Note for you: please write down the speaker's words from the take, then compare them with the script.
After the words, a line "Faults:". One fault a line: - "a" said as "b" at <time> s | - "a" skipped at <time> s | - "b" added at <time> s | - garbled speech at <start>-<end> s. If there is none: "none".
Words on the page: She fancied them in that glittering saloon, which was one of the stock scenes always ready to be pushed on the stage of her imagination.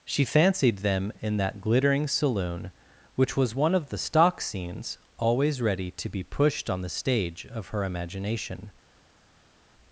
She fancied them in that glittering saloon, which was one of the stock scenes always ready to be pushed on the stage of her imagination.
Faults:
none